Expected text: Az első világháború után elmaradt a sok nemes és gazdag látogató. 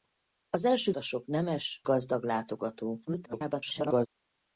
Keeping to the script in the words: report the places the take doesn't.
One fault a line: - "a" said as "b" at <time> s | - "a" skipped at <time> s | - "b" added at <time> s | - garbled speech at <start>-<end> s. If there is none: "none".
- "világháború után elmaradt" skipped at 0.9 s
- "és" skipped at 1.8 s
- garbled speech at 3.1-4.1 s